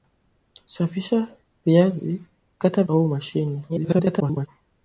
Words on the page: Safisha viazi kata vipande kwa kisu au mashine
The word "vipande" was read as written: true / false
false